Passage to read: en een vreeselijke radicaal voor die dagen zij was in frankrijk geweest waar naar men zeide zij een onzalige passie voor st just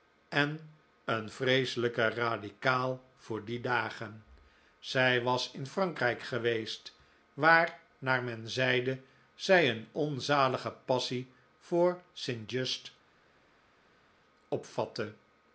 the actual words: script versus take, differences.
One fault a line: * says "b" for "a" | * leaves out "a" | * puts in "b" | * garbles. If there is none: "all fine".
all fine